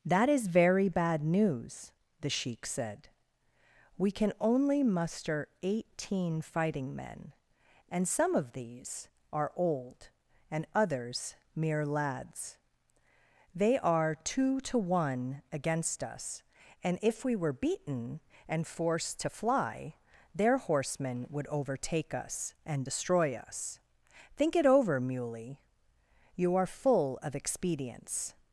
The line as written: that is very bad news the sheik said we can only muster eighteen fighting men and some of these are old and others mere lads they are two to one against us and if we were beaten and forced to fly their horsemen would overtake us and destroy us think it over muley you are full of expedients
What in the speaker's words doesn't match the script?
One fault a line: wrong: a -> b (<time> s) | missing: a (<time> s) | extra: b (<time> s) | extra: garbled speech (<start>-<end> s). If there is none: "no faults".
no faults